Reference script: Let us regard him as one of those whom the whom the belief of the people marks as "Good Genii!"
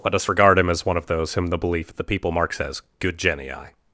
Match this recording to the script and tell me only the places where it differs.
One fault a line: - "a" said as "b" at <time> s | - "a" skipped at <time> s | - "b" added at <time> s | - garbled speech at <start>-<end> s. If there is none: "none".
- "whom the" skipped at 1.6 s